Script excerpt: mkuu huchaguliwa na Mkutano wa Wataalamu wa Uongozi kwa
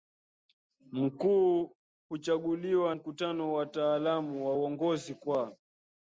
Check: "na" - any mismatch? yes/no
yes